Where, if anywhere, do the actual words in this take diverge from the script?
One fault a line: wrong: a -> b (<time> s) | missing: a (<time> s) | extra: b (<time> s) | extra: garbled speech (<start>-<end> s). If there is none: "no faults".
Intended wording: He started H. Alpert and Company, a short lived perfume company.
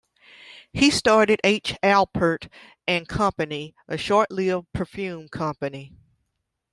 no faults